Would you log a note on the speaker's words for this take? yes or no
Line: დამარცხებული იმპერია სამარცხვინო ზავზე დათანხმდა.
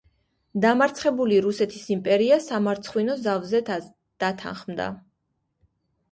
yes